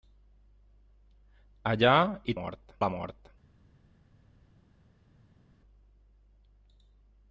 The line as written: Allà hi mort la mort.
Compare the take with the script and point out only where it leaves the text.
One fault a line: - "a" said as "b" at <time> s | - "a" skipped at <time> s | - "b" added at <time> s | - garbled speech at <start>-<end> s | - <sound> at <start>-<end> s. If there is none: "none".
none